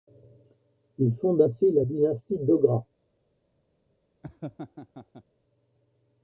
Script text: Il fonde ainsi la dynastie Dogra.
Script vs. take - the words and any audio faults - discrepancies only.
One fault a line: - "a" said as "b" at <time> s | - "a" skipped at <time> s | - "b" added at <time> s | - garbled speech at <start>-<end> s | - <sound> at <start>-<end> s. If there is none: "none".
- laugh at 4.2-5.2 s